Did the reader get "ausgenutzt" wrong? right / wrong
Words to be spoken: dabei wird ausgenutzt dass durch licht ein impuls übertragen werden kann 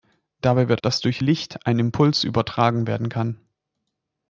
wrong